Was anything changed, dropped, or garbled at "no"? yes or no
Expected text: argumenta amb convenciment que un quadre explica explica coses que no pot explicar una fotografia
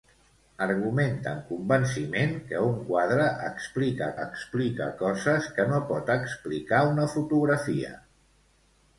no